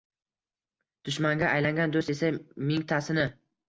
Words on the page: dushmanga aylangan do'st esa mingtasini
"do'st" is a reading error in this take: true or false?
false